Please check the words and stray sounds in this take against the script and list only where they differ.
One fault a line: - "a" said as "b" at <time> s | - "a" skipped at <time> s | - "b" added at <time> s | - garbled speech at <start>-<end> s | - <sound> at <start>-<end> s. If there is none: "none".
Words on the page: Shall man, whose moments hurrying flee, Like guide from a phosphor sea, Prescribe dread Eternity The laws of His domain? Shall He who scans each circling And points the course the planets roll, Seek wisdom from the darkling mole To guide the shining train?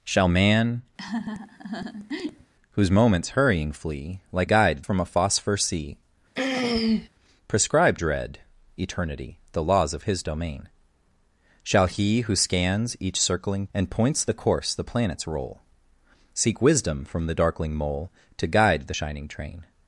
- laugh at 1.0-2.5 s
- throat clearing at 6.4-7.1 s